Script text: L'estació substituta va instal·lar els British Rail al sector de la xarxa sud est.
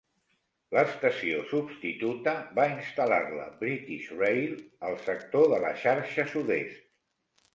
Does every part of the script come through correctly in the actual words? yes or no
no